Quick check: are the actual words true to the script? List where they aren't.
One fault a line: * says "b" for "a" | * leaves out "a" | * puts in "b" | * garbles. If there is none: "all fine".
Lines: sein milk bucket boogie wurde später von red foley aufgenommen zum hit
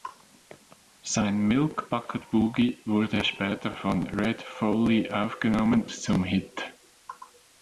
all fine